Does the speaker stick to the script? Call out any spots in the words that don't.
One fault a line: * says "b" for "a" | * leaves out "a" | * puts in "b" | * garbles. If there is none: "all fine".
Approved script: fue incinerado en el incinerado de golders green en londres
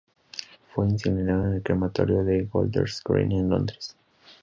* says "crematorio" for "incinerado"